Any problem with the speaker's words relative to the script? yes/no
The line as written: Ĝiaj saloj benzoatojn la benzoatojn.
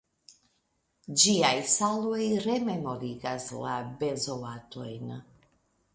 yes